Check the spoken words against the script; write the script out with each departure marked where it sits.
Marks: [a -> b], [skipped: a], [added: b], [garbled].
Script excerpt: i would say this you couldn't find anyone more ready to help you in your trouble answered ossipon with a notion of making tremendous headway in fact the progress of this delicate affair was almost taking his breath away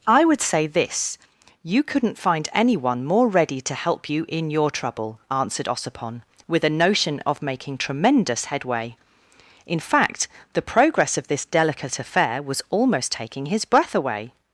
i would say this you couldn't find anyone more ready to help you in your trouble answered ossipon with a notion of making tremendous headway in fact the progress of this delicate affair was almost taking his breath away